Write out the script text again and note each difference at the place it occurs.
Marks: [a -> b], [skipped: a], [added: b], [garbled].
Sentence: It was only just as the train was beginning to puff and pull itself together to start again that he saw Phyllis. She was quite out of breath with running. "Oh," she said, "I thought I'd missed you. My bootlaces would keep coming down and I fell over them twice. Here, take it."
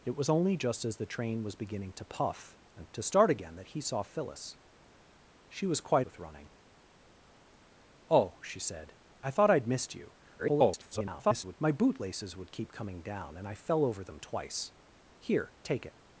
It was only just as the train was beginning to puff and [skipped: pull itself together] to start again that he saw Phyllis. She was quite [skipped: out of breath] with running. "Oh," she said, "I thought I'd missed you. [garbled] My bootlaces would keep coming down and I fell over them twice. Here, take it."